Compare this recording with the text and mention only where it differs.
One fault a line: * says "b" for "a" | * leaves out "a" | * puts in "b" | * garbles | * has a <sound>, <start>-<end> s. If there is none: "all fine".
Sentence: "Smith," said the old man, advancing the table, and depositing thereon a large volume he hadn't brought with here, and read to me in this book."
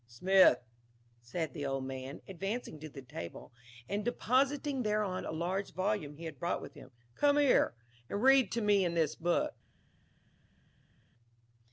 * puts in "to"
* says "had" for "hadn't"
* puts in "him come"